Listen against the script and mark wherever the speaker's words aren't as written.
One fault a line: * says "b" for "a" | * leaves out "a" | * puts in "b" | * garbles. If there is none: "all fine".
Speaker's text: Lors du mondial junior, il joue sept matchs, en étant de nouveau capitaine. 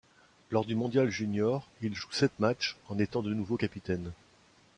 all fine